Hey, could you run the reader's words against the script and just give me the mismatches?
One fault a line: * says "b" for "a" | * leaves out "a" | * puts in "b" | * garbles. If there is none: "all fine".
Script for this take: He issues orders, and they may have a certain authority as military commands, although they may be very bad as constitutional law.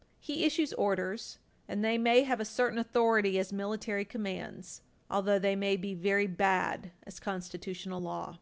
all fine